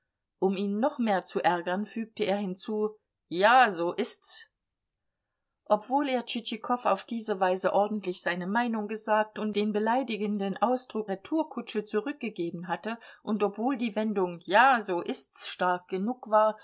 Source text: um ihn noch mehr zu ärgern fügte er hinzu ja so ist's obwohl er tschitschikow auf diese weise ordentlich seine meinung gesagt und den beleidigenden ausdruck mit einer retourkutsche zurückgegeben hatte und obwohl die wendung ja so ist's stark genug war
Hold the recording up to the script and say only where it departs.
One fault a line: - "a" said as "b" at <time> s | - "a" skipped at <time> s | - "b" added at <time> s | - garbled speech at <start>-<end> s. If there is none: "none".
- "mit einer" skipped at 11.1 s